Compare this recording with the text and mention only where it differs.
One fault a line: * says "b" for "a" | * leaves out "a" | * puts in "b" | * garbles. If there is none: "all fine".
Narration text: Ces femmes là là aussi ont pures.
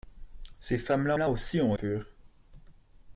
all fine